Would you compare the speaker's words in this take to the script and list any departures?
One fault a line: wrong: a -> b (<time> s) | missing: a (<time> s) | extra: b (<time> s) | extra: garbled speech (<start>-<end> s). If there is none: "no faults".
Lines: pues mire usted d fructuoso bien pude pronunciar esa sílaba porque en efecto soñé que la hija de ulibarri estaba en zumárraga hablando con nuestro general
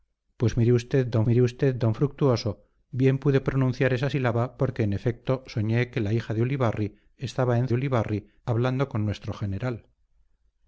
extra: mire usted d (1.3 s)
wrong: zumárraga -> ulibarri (7.7 s)